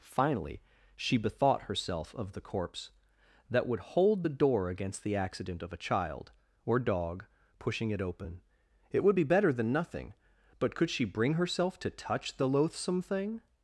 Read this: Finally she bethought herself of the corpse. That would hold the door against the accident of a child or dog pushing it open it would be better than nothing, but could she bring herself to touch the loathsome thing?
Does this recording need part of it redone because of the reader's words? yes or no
no